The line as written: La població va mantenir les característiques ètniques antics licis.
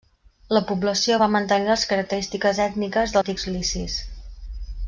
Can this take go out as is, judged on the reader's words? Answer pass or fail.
pass